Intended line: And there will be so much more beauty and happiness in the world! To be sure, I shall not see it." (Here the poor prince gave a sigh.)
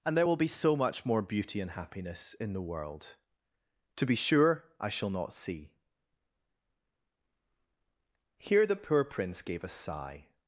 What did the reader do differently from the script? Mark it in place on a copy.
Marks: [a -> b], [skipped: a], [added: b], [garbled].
And there will be so much more beauty and happiness in the world! To be sure, I shall not see [skipped: it."] (Here the poor prince gave a sigh.)